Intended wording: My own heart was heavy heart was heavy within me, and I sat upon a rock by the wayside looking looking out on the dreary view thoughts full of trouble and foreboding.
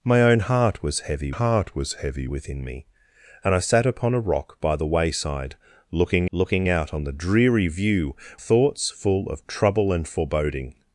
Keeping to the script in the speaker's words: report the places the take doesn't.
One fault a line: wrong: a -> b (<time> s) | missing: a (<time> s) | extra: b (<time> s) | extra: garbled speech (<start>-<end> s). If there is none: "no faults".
no faults